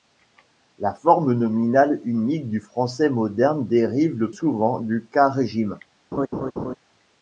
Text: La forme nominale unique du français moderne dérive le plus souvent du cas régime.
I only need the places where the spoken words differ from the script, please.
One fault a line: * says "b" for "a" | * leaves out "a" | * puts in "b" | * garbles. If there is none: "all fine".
* leaves out "plus"